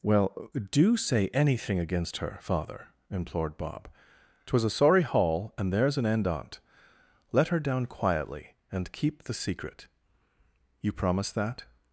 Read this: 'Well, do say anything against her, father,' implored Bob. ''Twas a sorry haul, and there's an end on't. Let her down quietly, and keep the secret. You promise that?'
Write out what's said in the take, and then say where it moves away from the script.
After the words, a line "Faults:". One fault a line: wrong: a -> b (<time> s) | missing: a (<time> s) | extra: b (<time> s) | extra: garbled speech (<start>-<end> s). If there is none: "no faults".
'Well, do say anything against her, father,' implored Bob. ''Twas a sorry haul, and there's an end on't. Let her down quietly, and keep the secret. You promise that?'
Faults:
no faults